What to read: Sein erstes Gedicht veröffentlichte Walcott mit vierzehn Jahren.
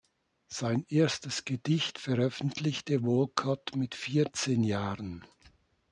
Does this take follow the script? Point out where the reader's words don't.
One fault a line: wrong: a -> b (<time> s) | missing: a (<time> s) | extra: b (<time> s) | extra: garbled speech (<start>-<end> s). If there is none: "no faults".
no faults